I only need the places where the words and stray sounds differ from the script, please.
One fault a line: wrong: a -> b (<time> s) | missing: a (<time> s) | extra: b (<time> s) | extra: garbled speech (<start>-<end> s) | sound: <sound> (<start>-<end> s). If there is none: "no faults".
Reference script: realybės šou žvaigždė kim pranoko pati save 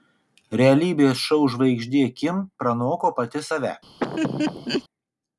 sound: laugh (4.0-4.8 s)